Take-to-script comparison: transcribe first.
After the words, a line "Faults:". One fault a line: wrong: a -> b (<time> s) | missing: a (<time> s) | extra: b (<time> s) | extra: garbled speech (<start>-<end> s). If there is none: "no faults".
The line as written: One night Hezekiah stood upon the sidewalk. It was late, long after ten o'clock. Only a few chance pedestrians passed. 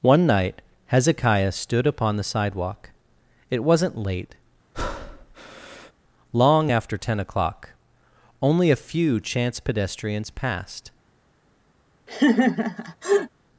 One night Hezekiah stood upon the sidewalk. It wasn't late, long after ten o'clock. Only a few chance pedestrians passed.
Faults:
wrong: was -> wasn't (3.6 s)